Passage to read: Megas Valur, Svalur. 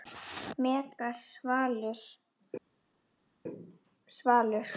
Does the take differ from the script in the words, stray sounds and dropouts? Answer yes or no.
no